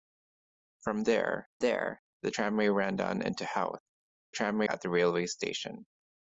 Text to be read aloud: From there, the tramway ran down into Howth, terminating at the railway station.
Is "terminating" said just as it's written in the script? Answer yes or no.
no